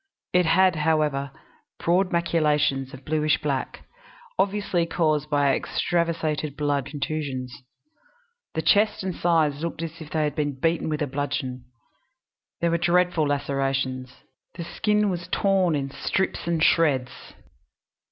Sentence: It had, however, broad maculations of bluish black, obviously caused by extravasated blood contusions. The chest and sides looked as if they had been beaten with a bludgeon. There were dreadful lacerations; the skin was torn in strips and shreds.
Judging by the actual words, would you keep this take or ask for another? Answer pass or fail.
pass